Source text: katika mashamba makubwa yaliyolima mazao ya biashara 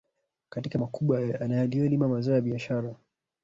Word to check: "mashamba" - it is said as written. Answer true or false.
false